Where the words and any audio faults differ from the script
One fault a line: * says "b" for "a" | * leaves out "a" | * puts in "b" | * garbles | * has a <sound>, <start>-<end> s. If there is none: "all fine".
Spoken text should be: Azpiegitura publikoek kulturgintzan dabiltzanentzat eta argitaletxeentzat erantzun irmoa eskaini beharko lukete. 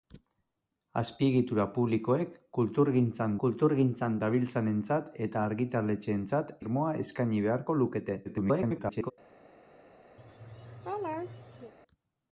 * puts in "kulturgintzan"
* leaves out "erantzun"
* garbles
* has a laugh, 10.2-11.7 s